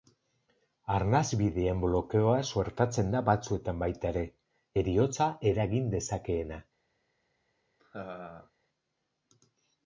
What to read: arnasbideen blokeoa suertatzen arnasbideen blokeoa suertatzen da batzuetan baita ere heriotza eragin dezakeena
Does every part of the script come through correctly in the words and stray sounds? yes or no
no